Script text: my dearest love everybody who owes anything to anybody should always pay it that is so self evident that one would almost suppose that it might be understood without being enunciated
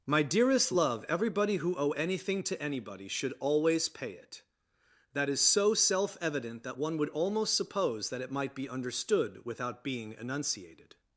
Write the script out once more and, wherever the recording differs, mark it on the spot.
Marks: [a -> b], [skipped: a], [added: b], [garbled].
my dearest love everybody who [owes -> owe] anything to anybody should always pay it that is so self evident that one would almost suppose that it might be understood without being enunciated